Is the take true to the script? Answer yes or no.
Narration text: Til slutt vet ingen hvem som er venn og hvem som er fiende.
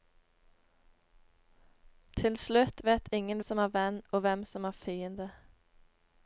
no